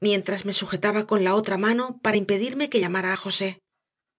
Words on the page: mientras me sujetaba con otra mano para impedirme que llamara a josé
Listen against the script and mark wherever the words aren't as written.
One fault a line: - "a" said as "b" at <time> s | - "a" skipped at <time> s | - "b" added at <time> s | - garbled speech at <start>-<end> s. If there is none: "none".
- "la" added at 1.2 s